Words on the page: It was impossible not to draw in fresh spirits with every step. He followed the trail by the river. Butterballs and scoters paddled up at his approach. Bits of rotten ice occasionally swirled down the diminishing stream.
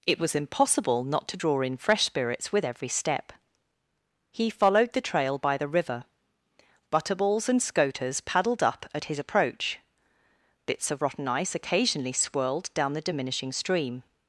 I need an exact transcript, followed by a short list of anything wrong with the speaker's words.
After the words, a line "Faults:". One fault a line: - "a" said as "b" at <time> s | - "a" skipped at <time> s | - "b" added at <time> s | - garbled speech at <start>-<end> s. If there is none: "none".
It was impossible not to draw in fresh spirits with every step. He followed the trail by the river. Butterballs and scoters paddled up at his approach. Bits of rotten ice occasionally swirled down the diminishing stream.
Faults:
none